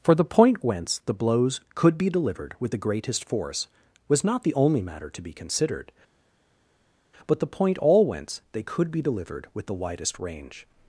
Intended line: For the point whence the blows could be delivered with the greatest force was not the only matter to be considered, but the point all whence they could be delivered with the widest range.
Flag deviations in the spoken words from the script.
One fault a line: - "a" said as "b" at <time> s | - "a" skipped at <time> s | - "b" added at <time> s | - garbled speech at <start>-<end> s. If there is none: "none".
none